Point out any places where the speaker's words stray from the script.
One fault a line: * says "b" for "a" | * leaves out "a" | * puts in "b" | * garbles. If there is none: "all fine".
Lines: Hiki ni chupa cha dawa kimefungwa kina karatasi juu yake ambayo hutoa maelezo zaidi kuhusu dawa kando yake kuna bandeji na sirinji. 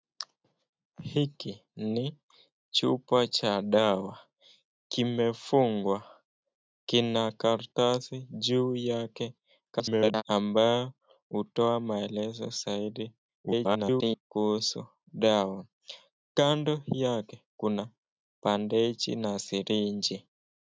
* garbles
* garbles